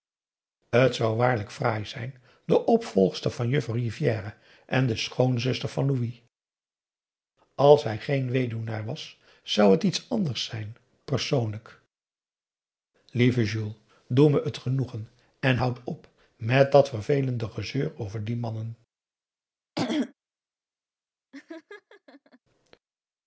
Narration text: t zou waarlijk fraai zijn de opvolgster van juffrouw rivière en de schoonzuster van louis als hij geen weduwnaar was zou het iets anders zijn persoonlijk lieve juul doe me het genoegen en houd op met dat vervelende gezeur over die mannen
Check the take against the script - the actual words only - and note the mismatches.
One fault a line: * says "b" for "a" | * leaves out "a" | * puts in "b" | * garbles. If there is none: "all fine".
all fine